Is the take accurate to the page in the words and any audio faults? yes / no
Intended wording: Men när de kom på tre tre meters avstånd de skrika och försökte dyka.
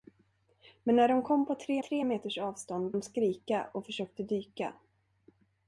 yes